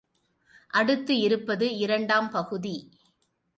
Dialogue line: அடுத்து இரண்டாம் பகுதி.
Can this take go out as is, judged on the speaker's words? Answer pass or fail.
fail